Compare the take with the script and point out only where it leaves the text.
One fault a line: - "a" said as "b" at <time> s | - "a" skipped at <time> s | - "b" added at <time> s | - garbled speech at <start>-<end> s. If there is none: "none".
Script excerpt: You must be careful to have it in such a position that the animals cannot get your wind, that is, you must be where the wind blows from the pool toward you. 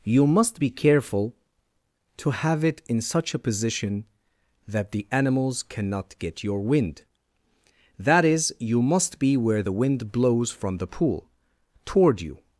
none